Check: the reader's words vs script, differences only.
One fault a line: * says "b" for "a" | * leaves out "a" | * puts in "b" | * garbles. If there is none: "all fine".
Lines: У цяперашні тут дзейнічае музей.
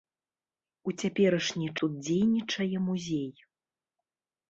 all fine